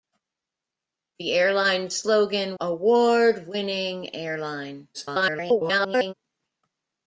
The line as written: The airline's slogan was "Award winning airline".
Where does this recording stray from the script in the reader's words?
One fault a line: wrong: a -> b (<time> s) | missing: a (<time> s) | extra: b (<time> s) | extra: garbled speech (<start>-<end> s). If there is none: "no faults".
missing: was (2.6 s)
extra: garbled speech (4.9-6.1 s)